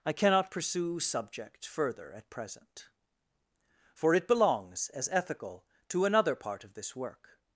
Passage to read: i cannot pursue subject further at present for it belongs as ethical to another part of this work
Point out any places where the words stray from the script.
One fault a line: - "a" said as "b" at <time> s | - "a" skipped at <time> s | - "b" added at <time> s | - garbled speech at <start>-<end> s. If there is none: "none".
none